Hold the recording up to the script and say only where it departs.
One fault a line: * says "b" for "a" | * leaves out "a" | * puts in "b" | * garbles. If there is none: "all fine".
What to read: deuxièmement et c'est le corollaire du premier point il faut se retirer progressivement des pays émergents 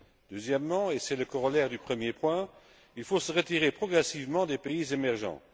all fine